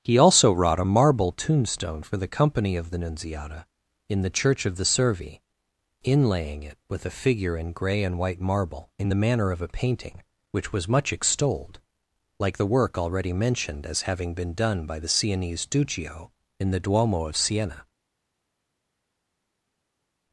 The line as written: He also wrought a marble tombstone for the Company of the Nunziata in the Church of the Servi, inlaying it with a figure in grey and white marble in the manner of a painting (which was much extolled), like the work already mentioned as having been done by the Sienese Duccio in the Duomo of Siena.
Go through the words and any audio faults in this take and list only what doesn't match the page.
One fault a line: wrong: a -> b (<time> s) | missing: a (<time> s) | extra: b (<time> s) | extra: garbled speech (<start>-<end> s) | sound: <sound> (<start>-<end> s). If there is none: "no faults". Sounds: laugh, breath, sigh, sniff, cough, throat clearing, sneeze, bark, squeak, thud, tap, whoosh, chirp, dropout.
no faults